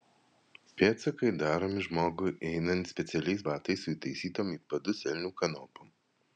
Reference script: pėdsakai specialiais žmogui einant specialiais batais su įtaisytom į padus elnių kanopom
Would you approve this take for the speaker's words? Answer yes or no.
no